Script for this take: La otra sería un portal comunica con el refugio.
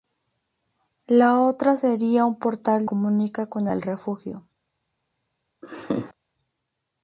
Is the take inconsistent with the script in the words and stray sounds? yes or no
yes